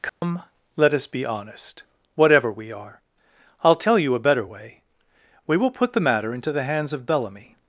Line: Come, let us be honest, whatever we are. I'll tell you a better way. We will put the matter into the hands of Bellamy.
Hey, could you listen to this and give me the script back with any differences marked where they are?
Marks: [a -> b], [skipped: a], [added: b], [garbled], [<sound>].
Come, [dropout] let us be honest, whatever we are. I'll tell you a better way. We will put the matter into the hands of Bellamy.